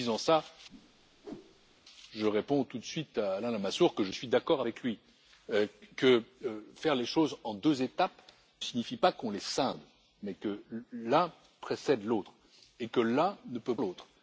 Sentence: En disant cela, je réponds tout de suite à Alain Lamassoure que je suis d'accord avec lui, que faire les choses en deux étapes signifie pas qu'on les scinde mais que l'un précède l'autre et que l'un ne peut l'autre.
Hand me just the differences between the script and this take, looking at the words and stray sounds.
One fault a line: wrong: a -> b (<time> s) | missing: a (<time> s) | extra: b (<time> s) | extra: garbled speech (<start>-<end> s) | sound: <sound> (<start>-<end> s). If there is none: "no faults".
sound: whoosh (0.7-1.8 s)